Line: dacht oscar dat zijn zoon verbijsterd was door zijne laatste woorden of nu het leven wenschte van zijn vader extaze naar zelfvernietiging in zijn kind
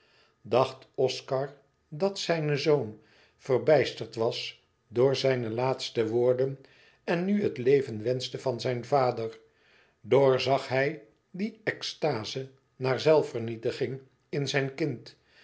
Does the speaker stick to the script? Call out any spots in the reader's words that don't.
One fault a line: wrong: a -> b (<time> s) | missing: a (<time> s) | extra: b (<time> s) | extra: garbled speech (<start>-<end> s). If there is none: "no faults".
wrong: of -> en (7.0 s)
extra: doorzag hij die (10.0 s)